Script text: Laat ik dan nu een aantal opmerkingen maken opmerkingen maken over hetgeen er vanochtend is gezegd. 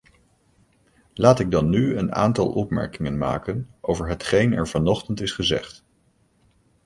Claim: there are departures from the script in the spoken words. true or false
true